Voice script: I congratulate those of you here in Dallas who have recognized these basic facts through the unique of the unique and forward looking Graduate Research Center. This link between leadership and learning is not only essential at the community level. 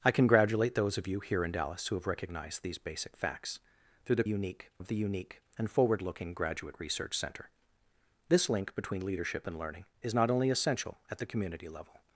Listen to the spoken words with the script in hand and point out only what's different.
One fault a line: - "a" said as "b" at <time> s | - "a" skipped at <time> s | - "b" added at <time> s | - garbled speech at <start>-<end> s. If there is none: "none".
none